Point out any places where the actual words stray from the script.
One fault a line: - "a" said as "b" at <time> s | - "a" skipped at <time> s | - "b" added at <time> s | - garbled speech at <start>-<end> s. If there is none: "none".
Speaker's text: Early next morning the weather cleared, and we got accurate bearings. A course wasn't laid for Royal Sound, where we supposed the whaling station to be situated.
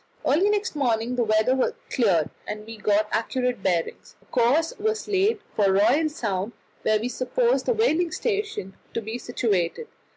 - "wasn't" said as "was" at 4.8 s